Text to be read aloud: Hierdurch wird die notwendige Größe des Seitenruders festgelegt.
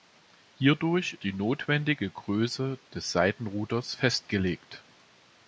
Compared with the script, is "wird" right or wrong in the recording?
wrong